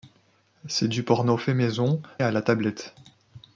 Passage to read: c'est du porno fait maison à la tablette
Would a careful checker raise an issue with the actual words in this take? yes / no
no